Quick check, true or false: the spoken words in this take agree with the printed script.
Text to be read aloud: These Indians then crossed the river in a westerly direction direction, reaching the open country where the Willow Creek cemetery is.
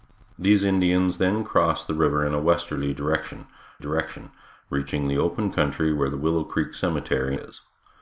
true